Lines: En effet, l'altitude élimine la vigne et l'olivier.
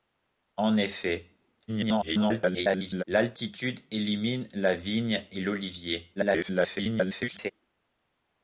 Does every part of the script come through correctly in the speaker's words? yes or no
no